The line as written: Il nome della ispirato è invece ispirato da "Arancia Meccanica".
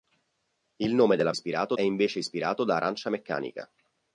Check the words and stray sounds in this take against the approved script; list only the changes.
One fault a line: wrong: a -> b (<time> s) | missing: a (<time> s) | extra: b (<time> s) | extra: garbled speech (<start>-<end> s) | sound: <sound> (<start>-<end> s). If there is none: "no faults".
no faults